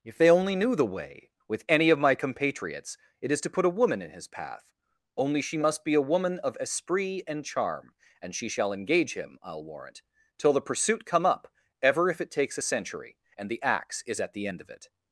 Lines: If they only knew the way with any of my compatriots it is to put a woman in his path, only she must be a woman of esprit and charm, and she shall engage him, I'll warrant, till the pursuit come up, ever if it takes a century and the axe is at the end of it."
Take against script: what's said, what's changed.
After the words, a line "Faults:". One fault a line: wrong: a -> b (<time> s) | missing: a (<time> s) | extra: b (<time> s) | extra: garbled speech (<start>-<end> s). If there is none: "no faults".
If they only knew the way with any of my compatriots it is to put a woman in his path, only she must be a woman of esprit and charm, and she shall engage him, I'll warrant, till the pursuit come up, ever if it takes a century and the axe is at the end of it."
Faults:
no faults